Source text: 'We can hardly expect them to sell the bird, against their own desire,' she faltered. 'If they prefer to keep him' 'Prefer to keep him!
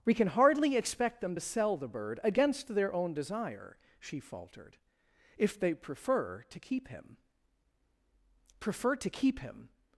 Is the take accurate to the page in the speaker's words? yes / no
yes